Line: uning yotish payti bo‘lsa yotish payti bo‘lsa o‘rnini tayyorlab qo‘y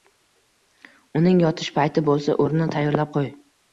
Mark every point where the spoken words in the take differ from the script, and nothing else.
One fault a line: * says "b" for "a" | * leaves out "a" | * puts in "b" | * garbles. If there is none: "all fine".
* leaves out "yotish payti bo‘lsa"